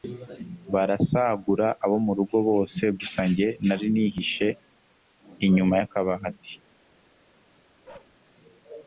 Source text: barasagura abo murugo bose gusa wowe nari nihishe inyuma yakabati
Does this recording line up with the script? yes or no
no